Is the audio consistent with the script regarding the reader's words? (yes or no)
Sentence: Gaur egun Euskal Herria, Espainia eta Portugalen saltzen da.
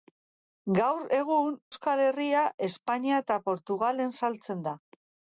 yes